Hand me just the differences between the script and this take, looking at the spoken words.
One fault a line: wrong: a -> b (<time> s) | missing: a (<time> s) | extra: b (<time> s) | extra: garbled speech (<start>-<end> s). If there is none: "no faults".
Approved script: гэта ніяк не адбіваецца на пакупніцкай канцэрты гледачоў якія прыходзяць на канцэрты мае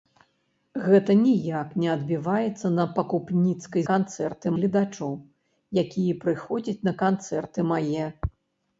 no faults